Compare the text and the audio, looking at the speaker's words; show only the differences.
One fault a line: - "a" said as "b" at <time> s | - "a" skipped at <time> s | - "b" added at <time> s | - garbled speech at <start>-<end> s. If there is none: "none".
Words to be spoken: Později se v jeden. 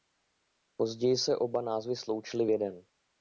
- "oba názvy sloučily" added at 1.4 s